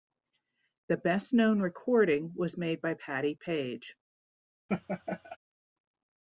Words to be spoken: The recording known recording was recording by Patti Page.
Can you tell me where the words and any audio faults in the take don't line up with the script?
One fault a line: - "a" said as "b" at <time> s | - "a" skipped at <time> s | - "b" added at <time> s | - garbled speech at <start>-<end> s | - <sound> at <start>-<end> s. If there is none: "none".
- "recording" said as "best" at 1.0 s
- "recording" said as "made" at 2.6 s
- laugh at 4.7-5.4 s